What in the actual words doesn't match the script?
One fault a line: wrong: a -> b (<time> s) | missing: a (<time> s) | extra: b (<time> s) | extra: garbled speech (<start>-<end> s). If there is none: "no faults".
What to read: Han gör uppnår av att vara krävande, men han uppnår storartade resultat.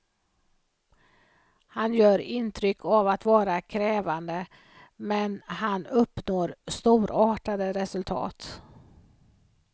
wrong: uppnår -> intryck (2.2 s)